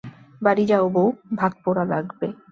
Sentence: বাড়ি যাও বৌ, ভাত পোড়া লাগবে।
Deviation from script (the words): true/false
false